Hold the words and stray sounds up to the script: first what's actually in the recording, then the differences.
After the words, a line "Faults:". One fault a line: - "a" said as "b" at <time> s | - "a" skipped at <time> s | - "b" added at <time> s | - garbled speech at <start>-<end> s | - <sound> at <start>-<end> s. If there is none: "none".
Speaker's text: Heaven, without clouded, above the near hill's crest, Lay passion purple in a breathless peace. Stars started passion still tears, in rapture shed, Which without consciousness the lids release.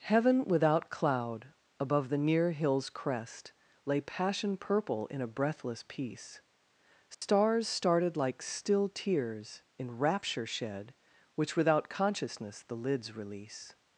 Heaven, without cloud, above the near hill's crest, Lay passion purple in a breathless peace. Stars started like still tears, in rapture shed, Which without consciousness the lids release.
Faults:
- "clouded" said as "cloud" at 0.9 s
- dropout at 7.1-7.2 s
- "passion" said as "like" at 8.1 s